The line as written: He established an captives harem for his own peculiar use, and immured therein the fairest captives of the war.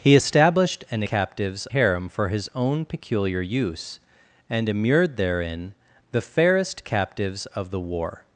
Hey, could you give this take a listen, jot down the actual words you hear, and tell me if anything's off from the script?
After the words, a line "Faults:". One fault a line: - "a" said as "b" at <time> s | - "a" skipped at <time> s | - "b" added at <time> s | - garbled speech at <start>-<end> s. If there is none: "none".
He established an captives harem for his own peculiar use, and immured therein the fairest captives of the war.
Faults:
none